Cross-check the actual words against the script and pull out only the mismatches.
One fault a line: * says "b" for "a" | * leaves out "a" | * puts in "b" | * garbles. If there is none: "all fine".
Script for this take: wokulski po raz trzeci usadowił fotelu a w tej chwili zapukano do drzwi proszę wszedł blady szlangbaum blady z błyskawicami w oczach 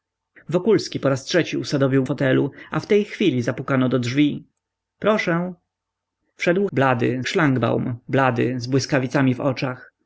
all fine